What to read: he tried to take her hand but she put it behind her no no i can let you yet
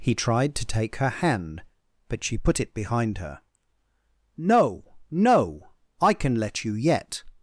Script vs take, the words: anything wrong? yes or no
no